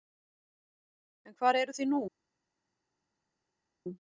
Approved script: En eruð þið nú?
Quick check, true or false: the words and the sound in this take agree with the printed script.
false